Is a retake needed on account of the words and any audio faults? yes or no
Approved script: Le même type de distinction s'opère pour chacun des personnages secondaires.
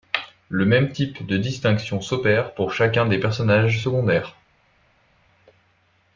no